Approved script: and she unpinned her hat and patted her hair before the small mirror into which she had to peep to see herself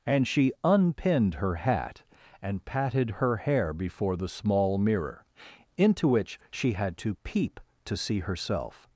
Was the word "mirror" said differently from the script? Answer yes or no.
no